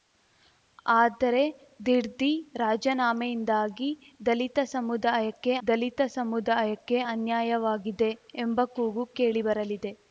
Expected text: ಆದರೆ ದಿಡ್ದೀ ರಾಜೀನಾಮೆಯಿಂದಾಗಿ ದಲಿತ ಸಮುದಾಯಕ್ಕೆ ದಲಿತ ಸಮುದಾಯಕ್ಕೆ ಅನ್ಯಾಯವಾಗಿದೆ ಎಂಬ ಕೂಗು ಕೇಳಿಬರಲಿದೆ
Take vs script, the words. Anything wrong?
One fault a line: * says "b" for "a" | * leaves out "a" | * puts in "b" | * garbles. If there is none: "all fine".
all fine